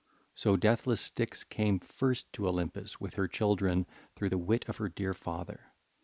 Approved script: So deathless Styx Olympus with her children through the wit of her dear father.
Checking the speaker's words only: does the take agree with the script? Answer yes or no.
no